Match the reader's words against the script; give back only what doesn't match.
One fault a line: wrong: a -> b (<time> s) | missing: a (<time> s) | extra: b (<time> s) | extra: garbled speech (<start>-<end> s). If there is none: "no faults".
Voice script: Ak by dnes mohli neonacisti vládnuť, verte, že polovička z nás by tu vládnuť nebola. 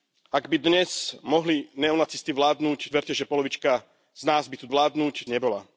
no faults